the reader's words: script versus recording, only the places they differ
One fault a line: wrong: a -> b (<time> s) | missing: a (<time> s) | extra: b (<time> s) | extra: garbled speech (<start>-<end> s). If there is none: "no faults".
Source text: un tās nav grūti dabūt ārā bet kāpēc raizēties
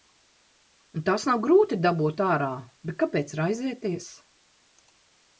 no faults